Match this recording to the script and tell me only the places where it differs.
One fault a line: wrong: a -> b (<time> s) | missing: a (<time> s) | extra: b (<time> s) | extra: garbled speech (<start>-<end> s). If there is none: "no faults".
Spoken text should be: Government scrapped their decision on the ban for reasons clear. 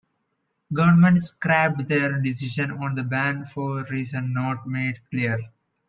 extra: not made (4.3 s)